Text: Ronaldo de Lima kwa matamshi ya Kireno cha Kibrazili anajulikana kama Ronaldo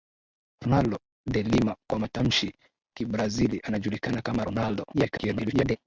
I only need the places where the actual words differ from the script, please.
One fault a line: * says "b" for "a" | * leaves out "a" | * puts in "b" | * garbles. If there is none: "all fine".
* leaves out "ya Kireno cha"
* garbles